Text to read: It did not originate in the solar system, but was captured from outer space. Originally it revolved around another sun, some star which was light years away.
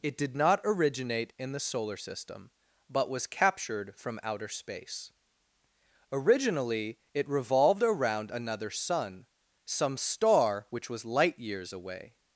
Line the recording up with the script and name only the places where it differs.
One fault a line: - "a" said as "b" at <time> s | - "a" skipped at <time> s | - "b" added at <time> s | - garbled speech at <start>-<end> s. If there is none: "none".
none